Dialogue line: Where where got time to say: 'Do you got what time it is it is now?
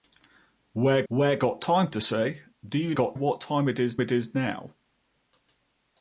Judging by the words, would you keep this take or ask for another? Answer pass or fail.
pass